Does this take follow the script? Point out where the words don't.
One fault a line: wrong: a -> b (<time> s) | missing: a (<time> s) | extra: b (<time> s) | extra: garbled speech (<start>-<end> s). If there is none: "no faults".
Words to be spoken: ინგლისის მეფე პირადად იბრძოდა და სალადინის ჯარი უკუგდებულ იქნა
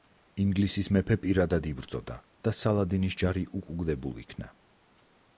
no faults